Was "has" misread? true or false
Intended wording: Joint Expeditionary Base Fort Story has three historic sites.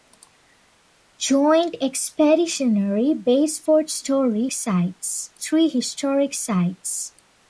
true